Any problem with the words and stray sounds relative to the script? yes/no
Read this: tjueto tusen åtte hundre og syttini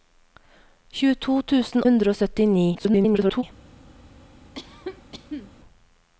yes